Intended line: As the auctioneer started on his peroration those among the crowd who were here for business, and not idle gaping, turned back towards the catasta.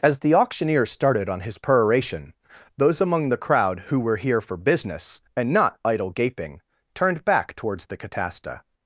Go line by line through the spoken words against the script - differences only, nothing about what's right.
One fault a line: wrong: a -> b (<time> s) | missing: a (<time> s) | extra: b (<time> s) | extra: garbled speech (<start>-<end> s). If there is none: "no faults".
no faults